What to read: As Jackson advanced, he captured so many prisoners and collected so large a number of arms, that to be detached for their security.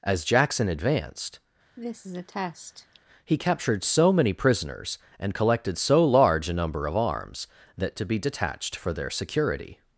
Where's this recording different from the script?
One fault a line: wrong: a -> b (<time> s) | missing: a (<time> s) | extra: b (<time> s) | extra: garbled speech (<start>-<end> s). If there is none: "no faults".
no faults